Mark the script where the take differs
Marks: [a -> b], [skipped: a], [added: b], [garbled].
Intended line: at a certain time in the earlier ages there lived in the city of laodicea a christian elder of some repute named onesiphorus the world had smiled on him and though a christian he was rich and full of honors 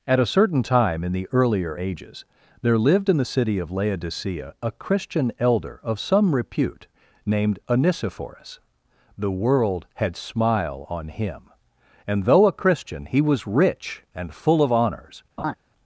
at a certain time in the earlier ages there lived in the city of laodicea a christian elder of some repute named onesiphorus the world had [smiled -> smile] on him and though a christian he was rich and full of honors